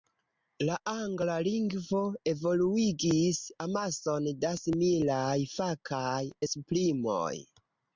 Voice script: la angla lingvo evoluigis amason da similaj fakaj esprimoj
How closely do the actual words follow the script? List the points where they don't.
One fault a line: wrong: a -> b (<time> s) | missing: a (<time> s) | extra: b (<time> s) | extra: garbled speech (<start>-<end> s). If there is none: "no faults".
no faults